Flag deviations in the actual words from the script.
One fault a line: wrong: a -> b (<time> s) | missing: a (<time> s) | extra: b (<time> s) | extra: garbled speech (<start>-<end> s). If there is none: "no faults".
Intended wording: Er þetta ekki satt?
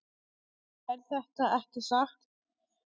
no faults